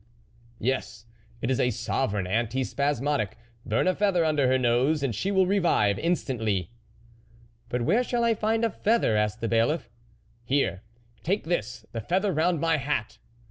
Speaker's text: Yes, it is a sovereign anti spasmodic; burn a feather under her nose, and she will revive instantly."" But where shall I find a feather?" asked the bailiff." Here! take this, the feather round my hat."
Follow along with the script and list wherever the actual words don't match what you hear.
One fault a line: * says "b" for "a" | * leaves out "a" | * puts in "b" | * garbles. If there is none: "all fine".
all fine